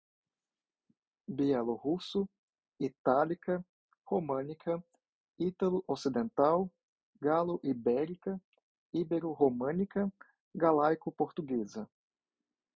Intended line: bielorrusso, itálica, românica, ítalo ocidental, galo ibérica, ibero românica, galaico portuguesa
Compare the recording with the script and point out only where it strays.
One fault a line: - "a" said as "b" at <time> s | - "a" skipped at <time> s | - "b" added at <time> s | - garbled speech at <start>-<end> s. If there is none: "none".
none